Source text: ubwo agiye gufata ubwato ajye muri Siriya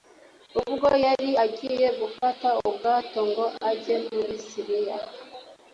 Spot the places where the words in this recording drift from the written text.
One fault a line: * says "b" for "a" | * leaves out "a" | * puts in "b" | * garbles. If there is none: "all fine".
* puts in "yari"
* puts in "ngo"